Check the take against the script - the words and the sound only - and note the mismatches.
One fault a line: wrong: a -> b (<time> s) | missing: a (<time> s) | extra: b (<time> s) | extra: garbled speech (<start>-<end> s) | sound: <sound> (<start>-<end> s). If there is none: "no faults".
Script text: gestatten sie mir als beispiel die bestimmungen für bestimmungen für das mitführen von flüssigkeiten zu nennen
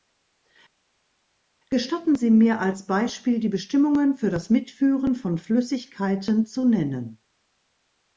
missing: bestimmungen für (4.3 s)